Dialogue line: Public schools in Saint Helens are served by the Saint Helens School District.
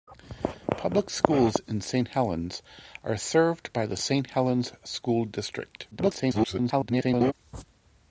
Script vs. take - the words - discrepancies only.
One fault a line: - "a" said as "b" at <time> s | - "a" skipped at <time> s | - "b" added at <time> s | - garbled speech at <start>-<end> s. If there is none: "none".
- garbled speech at 5.9-7.3 s